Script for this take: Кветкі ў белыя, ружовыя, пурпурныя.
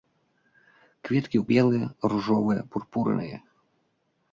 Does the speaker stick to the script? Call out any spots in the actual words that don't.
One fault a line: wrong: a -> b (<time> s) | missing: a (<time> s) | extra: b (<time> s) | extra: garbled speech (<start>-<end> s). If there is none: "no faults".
no faults